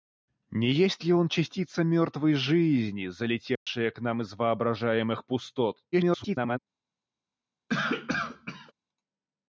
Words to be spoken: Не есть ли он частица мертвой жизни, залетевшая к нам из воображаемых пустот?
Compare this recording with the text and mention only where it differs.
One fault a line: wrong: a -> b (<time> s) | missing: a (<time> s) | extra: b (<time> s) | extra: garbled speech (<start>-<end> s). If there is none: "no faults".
extra: garbled speech (5.9-6.6 s)